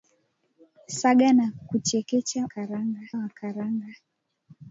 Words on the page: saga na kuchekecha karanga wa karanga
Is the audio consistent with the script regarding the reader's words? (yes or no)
yes